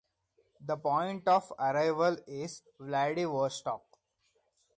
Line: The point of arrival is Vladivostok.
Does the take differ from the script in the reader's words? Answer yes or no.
no